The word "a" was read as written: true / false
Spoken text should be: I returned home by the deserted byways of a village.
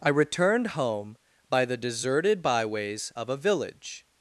true